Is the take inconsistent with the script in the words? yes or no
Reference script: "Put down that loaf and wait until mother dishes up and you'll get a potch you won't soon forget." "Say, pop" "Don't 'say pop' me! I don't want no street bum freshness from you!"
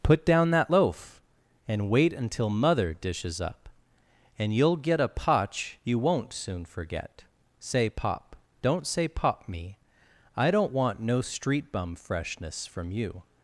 no